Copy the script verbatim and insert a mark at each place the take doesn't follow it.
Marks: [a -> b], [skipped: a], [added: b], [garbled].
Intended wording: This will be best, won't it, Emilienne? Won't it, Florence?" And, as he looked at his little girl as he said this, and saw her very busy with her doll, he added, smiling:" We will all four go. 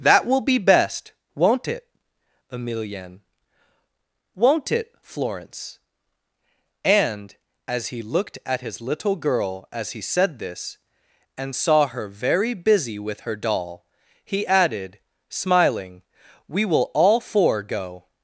[This -> That] will be best, won't it, Emilienne? Won't it, Florence?" And, as he looked at his little girl as he said this, and saw her very busy with her doll, he added, smiling:" We will all four go.